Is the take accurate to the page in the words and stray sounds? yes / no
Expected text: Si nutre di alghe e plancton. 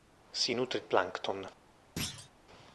no